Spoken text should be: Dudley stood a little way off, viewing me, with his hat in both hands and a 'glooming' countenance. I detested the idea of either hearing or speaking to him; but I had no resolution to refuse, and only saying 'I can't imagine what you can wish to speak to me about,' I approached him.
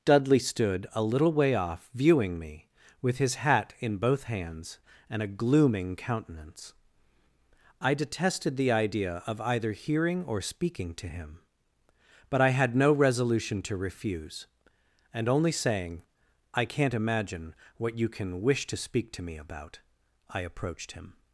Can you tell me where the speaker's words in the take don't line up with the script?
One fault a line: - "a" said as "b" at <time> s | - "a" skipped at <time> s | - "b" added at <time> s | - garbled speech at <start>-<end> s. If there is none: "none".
none